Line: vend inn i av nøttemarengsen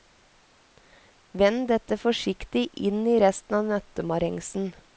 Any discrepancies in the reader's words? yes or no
yes